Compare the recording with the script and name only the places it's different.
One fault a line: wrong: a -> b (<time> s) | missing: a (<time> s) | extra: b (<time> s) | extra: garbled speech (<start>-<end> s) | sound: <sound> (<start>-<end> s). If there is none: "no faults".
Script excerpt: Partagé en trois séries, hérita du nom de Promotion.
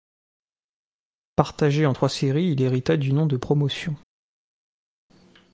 extra: il (2.5 s)